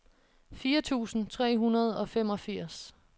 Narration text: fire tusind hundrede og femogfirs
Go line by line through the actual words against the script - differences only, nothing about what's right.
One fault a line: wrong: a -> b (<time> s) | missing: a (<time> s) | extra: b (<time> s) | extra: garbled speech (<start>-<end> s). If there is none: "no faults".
extra: tre (1.3 s)